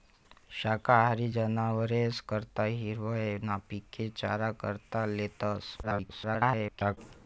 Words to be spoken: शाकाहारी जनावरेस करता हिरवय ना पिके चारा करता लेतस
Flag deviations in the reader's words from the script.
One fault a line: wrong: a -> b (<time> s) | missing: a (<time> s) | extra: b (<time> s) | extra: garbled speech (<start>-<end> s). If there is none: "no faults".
extra: garbled speech (5.8-7.0 s)